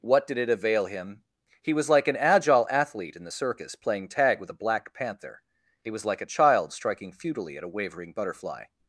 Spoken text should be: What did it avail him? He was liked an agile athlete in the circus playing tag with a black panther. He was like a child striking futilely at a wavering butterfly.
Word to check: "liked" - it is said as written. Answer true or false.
false